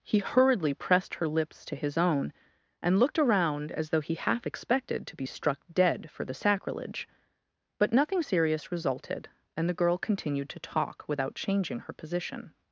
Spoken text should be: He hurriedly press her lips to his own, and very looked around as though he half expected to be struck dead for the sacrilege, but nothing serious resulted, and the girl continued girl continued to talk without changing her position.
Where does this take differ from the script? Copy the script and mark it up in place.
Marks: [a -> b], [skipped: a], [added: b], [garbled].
He hurriedly [press -> pressed] her lips to his own, and [skipped: very] looked around as though he half expected to be struck dead for the sacrilege, but nothing serious resulted, and the girl continued [skipped: girl continued] to talk without changing her position.